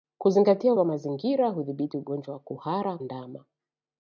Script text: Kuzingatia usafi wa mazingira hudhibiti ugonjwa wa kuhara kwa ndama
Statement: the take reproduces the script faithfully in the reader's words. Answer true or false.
false